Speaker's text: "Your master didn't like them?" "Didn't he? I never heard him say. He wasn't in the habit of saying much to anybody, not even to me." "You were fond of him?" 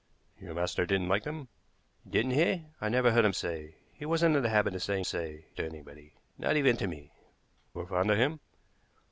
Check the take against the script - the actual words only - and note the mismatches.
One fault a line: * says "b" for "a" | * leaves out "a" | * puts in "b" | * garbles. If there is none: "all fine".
* says "say" for "much"
* leaves out "You"